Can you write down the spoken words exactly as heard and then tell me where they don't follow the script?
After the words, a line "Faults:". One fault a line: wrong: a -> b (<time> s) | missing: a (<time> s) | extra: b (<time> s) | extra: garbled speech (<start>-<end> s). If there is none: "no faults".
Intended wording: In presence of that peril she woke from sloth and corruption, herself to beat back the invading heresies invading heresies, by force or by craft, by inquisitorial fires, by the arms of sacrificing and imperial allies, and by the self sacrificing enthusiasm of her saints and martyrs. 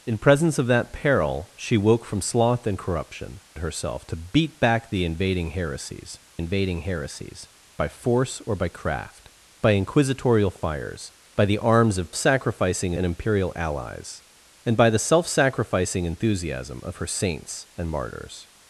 In presence of that peril she woke from sloth and corruption, herself to beat back the invading heresies invading heresies, by force or by craft, by inquisitorial fires, by the arms of sacrificing and imperial allies, and by the self sacrificing enthusiasm of her saints and martyrs.
Faults:
no faults